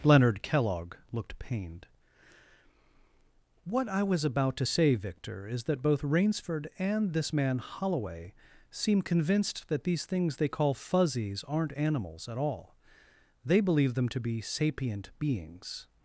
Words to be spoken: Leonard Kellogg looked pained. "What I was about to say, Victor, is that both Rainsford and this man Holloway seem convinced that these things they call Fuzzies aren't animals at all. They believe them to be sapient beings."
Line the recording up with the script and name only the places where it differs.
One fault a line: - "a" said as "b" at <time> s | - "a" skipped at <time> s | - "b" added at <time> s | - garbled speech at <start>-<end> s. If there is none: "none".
none